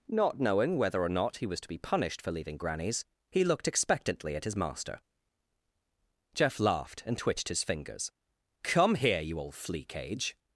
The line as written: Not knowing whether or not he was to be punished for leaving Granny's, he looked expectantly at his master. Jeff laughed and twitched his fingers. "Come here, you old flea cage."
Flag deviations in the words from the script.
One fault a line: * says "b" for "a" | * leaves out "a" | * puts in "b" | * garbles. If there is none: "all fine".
all fine